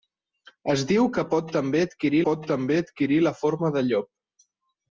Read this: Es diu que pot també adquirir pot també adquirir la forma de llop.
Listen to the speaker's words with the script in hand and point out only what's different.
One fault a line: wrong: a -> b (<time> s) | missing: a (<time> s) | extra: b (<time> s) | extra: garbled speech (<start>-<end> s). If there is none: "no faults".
no faults